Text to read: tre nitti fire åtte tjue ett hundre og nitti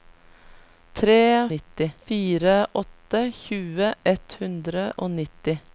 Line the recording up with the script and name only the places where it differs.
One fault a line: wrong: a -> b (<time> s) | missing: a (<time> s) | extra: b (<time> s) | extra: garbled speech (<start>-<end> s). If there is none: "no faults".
no faults